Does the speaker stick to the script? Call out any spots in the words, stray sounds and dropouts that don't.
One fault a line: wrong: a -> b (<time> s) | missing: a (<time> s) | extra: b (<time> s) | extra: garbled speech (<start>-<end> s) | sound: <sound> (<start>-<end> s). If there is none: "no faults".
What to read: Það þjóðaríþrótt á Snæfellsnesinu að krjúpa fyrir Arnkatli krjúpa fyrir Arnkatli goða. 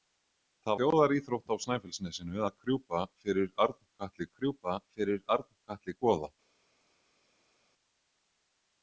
no faults